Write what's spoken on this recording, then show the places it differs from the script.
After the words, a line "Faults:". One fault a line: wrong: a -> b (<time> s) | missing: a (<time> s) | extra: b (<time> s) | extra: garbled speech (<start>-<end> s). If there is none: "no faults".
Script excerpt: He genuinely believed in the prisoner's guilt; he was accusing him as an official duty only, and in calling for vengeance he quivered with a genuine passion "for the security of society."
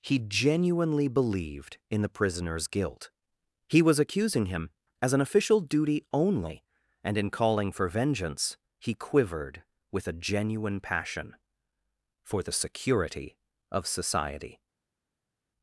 He genuinely believed in the prisoner's guilt; he was accusing him as an official duty only, and in calling for vengeance he quivered with a genuine passion "for the security of society."
Faults:
no faults